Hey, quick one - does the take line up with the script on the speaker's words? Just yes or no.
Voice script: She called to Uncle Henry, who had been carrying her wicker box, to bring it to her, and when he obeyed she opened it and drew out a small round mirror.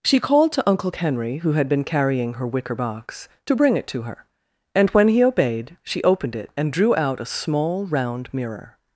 yes